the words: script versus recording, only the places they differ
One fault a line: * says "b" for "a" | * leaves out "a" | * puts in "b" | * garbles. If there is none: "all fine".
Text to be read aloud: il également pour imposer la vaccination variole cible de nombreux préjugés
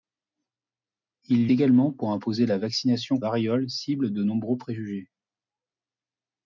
all fine